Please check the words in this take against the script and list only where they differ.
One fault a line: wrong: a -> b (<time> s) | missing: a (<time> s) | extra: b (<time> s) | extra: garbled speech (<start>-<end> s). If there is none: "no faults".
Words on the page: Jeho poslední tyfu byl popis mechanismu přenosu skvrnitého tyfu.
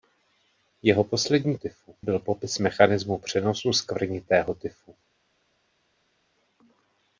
no faults